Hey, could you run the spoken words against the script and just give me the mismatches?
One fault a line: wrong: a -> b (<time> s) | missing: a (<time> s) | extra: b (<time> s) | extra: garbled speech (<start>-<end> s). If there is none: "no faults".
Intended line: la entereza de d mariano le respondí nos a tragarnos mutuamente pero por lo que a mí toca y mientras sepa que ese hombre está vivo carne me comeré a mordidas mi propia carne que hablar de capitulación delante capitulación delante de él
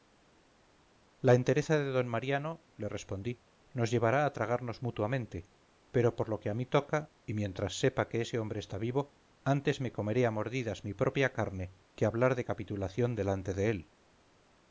extra: llevará (3.9 s)
wrong: carne -> antes (9.5 s)
missing: capitulación delante (13.5 s)